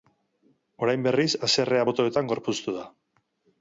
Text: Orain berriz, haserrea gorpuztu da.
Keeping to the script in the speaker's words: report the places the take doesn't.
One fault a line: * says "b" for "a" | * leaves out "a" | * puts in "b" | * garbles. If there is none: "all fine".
* puts in "botoetan"